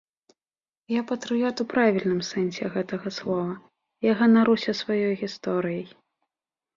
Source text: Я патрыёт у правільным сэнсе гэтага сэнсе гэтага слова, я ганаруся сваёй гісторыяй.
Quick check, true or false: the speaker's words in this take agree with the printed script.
false